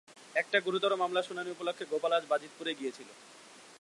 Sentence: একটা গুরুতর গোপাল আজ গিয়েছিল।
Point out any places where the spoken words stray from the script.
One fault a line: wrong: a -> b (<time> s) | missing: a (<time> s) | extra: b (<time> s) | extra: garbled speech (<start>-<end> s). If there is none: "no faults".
extra: মামলার শুনানি উপলক্ষে (1.0 s)
extra: বাজিতপুরে (2.3 s)